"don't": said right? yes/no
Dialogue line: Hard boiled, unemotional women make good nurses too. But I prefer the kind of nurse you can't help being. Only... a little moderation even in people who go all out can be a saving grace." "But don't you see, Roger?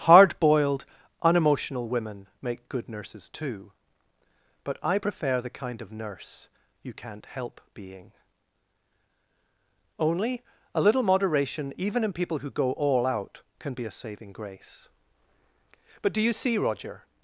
no